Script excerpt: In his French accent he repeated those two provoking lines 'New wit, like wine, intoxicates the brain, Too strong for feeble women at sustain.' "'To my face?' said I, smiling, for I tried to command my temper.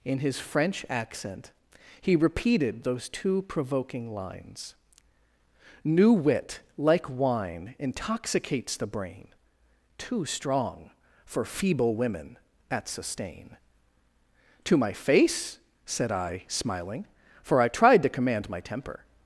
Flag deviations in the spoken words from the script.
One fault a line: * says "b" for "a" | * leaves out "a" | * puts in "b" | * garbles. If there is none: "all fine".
all fine